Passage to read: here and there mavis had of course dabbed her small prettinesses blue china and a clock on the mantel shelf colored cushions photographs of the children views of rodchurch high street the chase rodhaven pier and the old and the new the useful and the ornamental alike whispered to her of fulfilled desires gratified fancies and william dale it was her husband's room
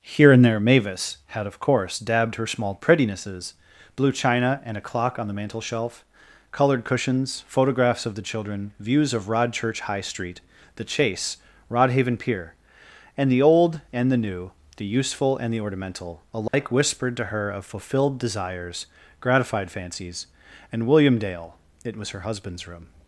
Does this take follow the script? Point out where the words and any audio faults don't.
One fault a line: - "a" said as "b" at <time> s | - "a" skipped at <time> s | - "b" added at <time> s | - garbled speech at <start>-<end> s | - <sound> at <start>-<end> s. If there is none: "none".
- dropout at 16.5-16.5 s